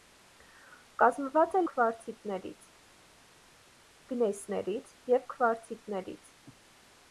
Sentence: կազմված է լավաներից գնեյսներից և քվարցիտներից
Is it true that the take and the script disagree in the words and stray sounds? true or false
true